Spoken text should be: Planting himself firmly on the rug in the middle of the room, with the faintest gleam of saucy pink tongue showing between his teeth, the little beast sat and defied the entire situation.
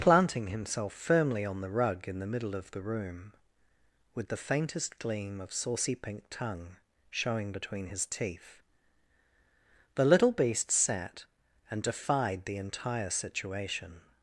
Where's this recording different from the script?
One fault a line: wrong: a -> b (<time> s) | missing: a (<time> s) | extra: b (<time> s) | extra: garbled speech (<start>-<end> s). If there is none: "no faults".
no faults